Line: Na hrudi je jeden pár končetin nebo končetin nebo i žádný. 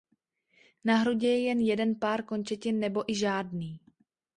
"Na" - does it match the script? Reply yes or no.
yes